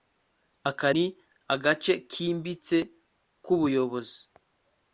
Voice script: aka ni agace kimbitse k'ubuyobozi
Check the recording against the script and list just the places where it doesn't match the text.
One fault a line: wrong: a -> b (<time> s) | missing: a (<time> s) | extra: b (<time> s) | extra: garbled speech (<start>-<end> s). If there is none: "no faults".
no faults